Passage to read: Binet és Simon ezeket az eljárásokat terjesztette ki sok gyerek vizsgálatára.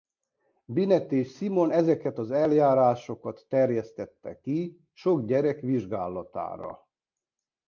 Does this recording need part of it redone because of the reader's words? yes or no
no